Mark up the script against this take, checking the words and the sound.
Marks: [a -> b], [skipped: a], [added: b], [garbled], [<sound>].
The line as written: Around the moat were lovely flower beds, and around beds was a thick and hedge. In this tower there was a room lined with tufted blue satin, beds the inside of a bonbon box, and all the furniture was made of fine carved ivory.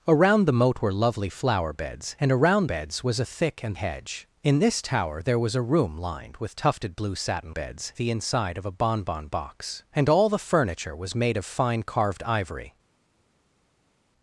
Around the moat were lovely flower beds, and around beds was a thick and hedge. In this tower there was a room lined with tufted blue satin, beds the inside of a bonbon box, and all the furniture was made of fine carved ivory.